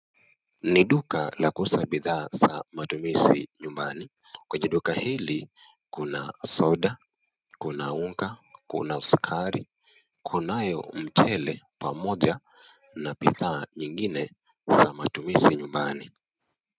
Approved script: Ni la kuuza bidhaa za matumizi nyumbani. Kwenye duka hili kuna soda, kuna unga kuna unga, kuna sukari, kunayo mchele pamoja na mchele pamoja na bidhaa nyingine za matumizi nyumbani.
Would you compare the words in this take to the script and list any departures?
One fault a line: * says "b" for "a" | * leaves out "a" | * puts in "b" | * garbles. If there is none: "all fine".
* puts in "duka"
* leaves out "unga kuna"
* leaves out "mchele pamoja na"